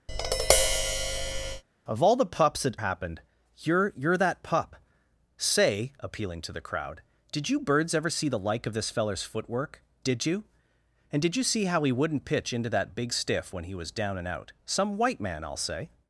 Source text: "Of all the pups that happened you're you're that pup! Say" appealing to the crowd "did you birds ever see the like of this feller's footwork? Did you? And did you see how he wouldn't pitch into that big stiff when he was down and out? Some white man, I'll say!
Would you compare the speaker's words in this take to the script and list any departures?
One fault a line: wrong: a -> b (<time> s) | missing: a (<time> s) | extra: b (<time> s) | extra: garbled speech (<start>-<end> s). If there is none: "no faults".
no faults